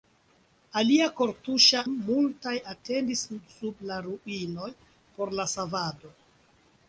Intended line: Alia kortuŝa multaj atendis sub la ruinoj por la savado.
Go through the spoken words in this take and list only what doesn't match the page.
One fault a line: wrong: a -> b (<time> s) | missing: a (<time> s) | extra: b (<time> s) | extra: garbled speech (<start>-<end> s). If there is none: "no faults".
no faults